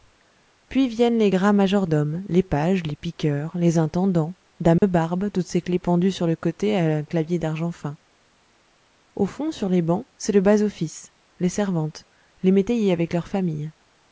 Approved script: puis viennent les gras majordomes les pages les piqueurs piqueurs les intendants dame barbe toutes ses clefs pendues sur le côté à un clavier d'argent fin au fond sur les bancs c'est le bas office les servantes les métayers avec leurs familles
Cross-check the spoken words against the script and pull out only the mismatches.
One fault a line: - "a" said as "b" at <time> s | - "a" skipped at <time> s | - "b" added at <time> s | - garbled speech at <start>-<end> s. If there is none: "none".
- "piqueurs" skipped at 3.5 s